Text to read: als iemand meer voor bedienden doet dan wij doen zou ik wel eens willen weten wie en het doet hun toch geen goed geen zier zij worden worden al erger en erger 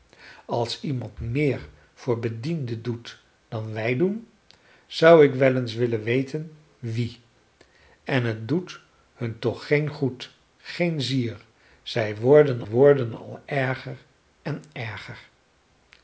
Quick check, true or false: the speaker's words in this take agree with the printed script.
true